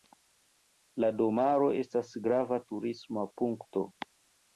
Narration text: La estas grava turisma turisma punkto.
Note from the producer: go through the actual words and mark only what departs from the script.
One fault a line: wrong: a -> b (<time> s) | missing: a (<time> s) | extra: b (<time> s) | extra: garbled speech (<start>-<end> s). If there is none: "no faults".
extra: domaro (1.2 s)
missing: turisma (3.2 s)